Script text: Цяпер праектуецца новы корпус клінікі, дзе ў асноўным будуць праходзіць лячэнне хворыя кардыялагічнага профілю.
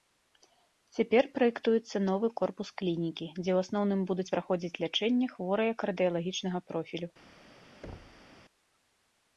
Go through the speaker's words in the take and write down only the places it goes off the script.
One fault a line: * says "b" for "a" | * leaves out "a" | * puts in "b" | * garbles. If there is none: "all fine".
all fine